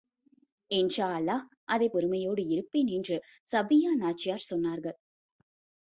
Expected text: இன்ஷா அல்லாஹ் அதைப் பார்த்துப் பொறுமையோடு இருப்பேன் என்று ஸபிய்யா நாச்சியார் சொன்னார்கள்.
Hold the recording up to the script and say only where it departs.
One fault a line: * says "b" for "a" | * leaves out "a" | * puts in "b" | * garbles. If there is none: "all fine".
* leaves out "பார்த்துப்"